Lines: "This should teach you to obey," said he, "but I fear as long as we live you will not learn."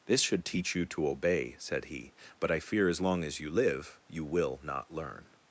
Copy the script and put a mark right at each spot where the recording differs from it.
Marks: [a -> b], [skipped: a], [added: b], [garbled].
"This should teach you to obey," said he, "but I fear as long as [we -> you] live you will not learn."